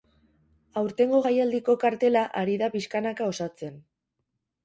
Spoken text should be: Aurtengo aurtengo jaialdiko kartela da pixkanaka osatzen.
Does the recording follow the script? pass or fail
fail